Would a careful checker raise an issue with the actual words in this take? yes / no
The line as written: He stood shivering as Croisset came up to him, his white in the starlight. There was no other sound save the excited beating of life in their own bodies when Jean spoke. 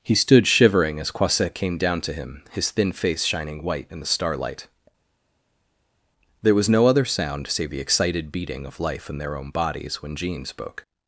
yes